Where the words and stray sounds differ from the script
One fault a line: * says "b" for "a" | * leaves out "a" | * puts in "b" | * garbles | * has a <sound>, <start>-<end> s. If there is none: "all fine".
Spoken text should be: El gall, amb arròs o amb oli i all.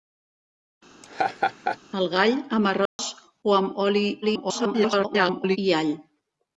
* has a laugh, 1.0-1.8 s
* has a dropout, 2.9-3.0 s
* garbles